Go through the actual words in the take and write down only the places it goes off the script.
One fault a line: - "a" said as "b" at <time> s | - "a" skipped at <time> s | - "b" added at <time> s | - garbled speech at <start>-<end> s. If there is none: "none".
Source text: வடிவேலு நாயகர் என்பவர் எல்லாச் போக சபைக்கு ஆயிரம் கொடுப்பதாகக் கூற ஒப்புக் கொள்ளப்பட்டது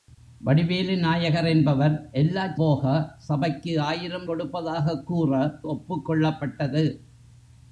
none